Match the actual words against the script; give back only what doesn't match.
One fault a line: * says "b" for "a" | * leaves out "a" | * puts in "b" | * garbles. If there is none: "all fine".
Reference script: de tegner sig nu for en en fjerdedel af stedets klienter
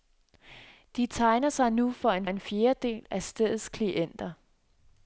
all fine